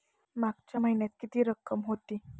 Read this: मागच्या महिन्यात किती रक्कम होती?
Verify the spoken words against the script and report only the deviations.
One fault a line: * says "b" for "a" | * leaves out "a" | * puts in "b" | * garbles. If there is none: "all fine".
all fine